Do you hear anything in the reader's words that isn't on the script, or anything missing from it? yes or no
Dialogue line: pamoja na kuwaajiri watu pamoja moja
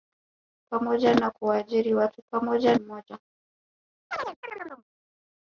no